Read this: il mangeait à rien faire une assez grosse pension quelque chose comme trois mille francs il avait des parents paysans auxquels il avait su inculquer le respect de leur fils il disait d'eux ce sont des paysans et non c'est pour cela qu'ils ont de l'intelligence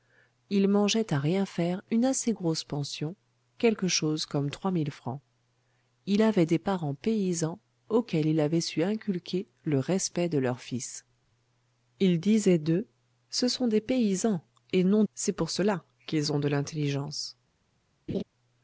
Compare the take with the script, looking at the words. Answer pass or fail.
pass